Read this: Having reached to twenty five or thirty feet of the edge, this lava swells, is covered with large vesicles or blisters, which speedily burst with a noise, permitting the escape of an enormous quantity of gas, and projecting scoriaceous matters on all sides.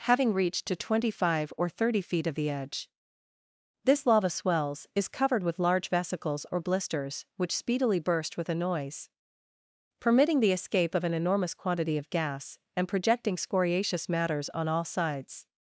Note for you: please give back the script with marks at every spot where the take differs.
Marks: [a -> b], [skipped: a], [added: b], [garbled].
Having reached to twenty five or thirty feet of the edge, this lava swells, is covered with large vesicles or blisters, which speedily burst with a noise, permitting the escape of an enormous quantity of gas, and projecting scoriaceous matters on all sides.